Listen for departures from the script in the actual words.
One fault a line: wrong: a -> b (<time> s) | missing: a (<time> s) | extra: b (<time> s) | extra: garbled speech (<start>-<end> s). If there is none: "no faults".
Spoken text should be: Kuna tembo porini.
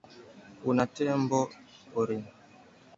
no faults